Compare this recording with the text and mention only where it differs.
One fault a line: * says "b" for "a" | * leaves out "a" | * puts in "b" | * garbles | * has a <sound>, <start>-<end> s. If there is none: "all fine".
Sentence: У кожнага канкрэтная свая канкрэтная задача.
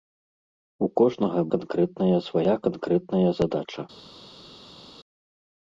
all fine